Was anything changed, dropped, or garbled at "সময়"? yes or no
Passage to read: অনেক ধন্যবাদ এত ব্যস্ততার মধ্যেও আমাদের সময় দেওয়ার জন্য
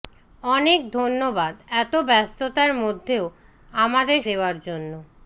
yes